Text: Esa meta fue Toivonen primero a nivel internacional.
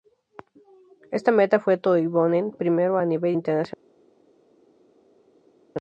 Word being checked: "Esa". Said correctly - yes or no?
no